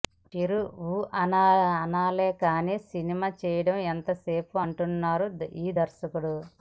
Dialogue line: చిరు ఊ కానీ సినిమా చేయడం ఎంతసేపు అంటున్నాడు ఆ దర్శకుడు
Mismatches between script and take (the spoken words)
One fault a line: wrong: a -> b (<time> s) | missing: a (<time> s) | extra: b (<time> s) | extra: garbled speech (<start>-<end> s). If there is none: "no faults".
extra: అనాలే (1.8 s)
wrong: ఆ -> ఈ (5.6 s)